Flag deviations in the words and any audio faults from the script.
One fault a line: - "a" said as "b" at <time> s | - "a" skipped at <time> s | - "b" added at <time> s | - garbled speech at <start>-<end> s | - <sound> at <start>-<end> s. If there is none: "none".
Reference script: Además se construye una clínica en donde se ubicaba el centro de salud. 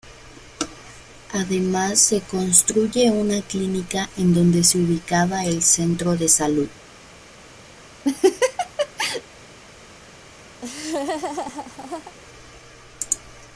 - laugh at 8.0-9.2 s
- laugh at 10.6-12.1 s